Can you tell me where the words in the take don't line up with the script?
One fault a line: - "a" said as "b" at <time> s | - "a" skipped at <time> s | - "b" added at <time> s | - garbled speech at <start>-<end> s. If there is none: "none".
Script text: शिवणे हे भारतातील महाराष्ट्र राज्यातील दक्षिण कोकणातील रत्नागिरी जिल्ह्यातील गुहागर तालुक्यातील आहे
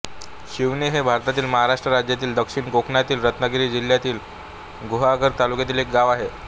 - "एक गाव" added at 5.8 s